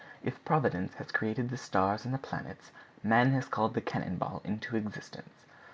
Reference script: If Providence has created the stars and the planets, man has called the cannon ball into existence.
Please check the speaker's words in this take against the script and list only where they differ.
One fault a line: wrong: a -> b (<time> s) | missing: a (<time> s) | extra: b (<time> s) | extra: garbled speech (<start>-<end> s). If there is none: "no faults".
no faults